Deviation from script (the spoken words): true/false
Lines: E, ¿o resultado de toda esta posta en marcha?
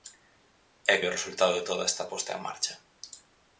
false